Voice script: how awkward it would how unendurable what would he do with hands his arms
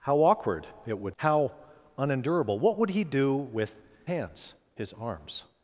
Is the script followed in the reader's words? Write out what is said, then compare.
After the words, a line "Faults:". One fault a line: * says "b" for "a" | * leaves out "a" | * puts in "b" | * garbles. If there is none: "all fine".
how awkward it would how unendurable what would he do with hands his arms
Faults:
all fine